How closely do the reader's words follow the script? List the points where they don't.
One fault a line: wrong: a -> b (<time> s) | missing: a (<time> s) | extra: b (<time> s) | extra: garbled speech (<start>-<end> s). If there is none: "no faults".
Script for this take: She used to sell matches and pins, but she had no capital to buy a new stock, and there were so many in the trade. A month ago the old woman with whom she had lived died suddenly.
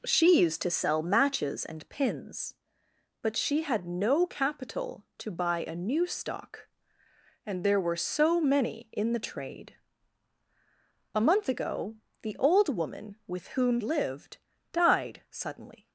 missing: she had (13.8 s)